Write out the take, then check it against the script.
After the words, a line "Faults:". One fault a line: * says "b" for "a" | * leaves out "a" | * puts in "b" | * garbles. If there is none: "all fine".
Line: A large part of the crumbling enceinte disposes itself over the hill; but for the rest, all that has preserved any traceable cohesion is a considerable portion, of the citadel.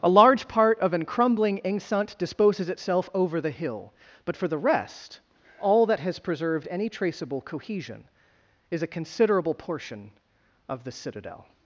A large part of an crumbling enceinte disposes itself over the hill; but for the rest, all that has preserved any traceable cohesion is a considerable portion, of the citadel.
Faults:
* says "an" for "the"